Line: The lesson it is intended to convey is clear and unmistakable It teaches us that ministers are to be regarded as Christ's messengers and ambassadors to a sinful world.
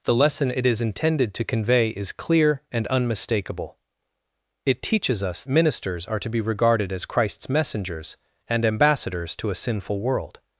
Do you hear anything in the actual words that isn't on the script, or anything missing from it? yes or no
yes